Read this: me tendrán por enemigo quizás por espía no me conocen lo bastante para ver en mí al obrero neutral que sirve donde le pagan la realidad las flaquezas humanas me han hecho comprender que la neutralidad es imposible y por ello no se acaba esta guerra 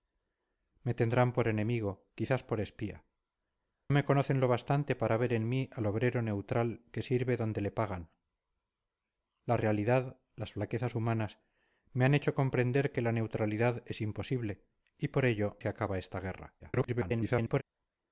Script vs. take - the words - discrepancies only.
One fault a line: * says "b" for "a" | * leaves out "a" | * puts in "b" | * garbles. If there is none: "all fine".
* leaves out "no"
* leaves out "no"
* garbles